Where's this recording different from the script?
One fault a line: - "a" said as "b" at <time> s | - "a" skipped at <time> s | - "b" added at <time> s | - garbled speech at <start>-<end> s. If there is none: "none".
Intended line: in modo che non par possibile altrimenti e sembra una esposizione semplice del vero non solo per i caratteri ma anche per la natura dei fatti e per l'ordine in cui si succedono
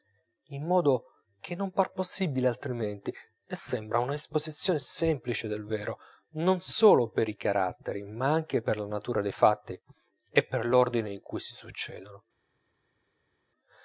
none